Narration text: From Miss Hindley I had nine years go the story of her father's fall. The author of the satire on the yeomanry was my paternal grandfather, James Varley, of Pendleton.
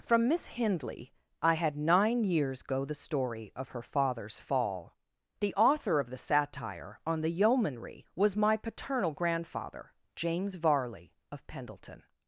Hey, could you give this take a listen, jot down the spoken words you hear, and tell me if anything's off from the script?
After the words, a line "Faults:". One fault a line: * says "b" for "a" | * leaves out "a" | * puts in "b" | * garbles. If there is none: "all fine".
From Miss Hindley I had nine years go the story of her father's fall. The author of the satire on the yeomanry was my paternal grandfather, James Varley, of Pendleton.
Faults:
all fine